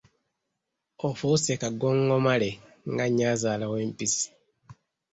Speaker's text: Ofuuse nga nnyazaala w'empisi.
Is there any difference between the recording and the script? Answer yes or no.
yes